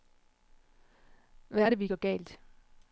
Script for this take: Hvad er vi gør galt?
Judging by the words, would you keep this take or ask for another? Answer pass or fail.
fail